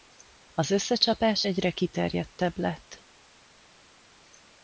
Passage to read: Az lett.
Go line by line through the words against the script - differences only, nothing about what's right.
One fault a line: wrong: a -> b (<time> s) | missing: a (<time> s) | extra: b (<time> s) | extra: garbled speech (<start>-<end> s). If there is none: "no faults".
extra: összecsapás egyre kiterjedtebb (0.7 s)